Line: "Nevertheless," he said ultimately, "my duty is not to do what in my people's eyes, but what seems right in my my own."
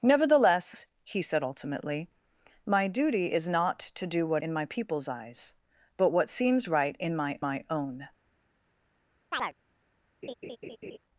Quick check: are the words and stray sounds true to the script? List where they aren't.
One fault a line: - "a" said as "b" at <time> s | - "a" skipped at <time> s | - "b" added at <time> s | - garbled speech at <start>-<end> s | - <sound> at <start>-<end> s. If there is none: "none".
- chirp at 9.3-9.5 s
- laugh at 10.2-11.0 s